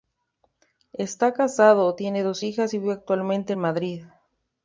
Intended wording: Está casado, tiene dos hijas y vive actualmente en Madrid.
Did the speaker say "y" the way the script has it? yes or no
yes